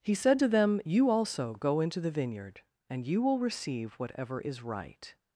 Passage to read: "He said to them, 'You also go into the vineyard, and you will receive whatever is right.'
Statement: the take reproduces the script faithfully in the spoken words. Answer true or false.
true